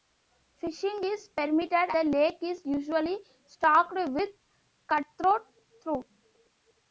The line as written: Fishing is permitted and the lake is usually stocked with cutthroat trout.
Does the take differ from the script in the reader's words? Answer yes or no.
yes